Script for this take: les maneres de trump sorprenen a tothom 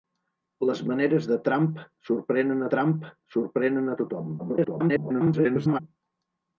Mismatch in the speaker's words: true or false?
true